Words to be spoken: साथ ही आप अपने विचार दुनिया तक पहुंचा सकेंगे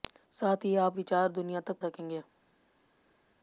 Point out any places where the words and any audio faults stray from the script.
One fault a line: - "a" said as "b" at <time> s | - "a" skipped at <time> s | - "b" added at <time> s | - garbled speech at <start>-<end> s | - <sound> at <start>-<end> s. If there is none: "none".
- "अपने" skipped at 1.0 s
- "पहुंचा" skipped at 1.8 s